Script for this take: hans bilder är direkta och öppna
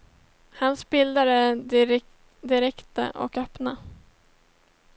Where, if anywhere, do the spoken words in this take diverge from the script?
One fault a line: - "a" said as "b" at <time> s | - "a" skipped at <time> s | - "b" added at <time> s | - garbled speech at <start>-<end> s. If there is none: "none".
none